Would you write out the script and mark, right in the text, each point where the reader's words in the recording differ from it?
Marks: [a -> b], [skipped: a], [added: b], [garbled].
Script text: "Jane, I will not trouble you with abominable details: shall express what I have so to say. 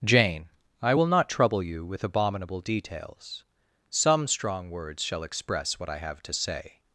"Jane, I will not trouble you with abominable details: [added: some strong words] shall express what I have [skipped: so] to say.